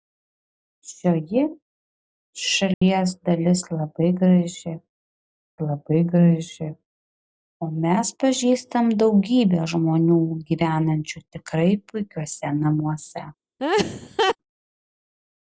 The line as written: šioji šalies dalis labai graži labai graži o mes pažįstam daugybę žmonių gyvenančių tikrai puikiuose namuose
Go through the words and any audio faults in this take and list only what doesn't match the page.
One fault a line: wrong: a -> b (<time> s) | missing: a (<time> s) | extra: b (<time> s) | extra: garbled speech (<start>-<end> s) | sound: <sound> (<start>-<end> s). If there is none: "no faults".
sound: dropout (2.7-2.8 s)
sound: laugh (13.6-14.4 s)